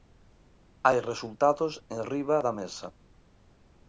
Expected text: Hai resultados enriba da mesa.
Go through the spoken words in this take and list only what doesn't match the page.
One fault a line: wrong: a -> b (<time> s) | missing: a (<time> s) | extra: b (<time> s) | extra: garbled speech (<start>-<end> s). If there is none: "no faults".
no faults